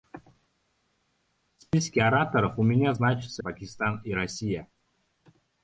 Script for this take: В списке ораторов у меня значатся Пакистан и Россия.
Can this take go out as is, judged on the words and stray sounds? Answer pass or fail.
pass